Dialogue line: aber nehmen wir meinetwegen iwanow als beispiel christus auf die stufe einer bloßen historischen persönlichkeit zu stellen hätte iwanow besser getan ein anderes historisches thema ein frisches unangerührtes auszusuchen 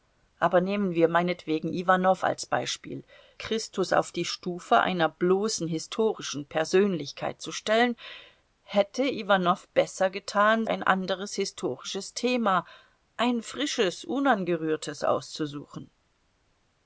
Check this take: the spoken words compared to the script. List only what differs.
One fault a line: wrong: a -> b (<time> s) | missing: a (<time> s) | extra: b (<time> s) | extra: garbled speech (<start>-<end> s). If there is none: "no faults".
no faults